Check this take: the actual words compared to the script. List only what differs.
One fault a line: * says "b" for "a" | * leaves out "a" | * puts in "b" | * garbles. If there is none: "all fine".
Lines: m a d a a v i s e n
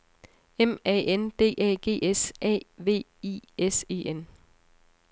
* puts in "n"
* puts in "g s"